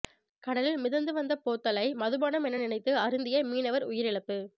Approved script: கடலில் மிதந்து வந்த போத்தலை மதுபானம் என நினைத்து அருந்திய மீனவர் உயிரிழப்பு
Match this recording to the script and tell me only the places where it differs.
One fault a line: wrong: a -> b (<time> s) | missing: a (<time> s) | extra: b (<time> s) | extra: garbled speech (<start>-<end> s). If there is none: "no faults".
no faults